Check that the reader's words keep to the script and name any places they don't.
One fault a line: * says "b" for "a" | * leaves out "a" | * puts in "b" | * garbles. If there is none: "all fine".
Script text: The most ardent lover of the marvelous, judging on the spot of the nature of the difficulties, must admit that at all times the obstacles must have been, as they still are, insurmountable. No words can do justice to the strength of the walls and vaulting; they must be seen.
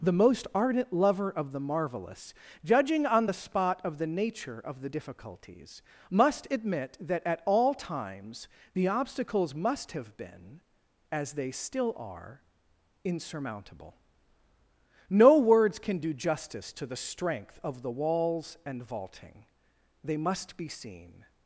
all fine